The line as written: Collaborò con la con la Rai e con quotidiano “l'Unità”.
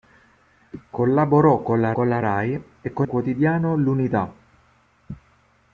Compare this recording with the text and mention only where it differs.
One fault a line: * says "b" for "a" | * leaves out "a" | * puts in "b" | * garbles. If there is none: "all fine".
all fine